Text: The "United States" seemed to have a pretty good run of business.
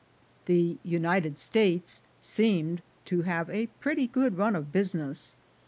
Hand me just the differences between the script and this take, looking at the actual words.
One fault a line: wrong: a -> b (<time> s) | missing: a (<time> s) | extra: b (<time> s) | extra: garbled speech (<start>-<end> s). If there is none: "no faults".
no faults